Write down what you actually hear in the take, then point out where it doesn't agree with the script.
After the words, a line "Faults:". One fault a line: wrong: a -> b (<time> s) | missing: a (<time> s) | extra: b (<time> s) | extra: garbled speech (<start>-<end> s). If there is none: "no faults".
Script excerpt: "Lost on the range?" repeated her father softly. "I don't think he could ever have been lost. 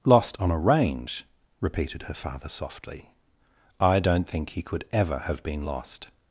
"Lost on a range?" repeated her father softly. "I don't think he could ever have been lost.
Faults:
wrong: the -> a (0.5 s)